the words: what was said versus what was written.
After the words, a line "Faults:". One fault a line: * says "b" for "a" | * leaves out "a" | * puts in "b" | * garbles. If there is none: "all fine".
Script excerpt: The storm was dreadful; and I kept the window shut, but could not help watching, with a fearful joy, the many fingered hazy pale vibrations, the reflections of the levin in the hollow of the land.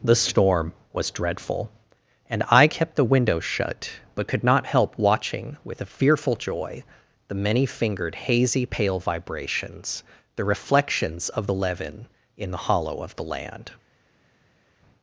The storm was dreadful; and I kept the window shut, but could not help watching, with a fearful joy, the many fingered hazy pale vibrations, the reflections of the levin in the hollow of the land.
Faults:
all fine